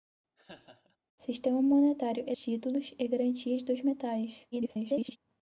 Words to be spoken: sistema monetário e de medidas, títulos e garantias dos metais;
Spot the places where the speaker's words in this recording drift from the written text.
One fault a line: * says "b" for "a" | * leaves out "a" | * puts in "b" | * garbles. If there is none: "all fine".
* leaves out "de medidas"
* garbles